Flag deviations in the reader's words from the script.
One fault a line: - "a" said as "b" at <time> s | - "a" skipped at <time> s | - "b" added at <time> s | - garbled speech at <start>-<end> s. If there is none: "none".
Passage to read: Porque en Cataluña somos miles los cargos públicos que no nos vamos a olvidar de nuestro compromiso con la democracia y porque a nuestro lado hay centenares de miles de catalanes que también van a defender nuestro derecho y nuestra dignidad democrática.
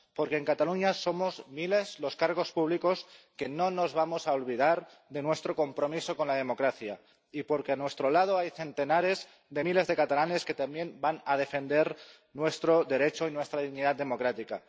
none